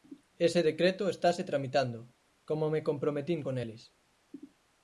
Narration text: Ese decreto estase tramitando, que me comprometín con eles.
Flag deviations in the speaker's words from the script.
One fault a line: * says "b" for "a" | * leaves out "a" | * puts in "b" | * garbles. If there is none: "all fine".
* says "como" for "que"